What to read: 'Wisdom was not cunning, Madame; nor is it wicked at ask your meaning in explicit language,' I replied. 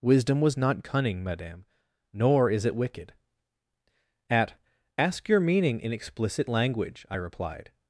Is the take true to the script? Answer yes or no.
yes